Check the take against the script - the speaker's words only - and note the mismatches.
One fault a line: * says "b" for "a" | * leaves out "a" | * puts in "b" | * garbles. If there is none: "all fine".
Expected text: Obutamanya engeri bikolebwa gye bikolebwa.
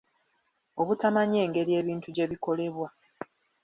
* says "ebintu" for "bikolebwa"